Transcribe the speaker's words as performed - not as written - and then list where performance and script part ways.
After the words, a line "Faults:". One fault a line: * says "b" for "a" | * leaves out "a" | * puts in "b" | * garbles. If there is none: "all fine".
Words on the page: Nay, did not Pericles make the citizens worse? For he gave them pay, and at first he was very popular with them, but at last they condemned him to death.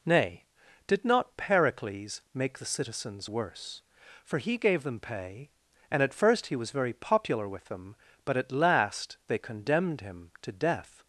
Nay, did not Pericles make the citizens worse? For he gave them pay, and at first he was very popular with them, but at last they condemned him to death.
Faults:
all fine